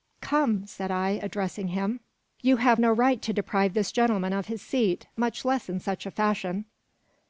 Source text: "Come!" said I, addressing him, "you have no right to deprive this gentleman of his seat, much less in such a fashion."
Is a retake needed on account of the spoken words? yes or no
no